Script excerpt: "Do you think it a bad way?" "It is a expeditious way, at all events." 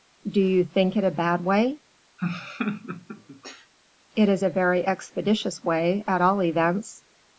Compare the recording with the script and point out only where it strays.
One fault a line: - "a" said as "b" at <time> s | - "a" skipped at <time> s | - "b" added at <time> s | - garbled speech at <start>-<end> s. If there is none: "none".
- "very" added at 4.5 s